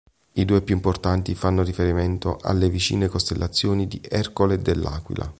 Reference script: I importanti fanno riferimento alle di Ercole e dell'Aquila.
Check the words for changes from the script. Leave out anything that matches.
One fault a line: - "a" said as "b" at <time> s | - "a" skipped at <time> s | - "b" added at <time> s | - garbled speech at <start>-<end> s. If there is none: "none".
- "due più" added at 0.5 s
- "vicine costellazioni" added at 2.7 s